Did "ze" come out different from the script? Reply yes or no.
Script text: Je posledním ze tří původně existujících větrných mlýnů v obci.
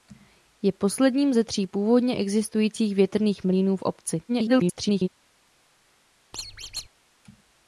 no